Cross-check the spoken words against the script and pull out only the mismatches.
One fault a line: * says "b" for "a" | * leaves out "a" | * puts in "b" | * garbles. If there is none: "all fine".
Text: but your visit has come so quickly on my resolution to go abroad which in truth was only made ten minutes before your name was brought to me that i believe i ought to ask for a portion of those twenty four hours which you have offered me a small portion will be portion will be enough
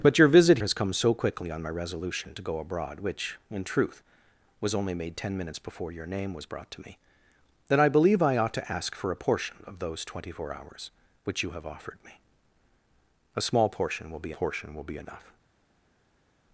all fine